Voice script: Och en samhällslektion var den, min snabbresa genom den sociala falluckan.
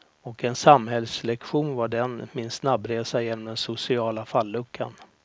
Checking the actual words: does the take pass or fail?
pass